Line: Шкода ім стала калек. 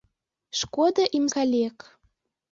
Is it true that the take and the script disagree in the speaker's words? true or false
true